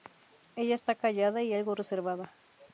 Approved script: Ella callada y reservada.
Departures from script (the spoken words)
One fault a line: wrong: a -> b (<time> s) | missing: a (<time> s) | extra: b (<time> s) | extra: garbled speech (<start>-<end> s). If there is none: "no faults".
extra: está (0.7 s)
extra: algo (1.5 s)